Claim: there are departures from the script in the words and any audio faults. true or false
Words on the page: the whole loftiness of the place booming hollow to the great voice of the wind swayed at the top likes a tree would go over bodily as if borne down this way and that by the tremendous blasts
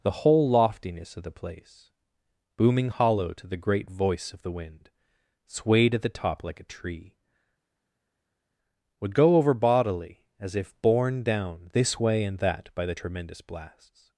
true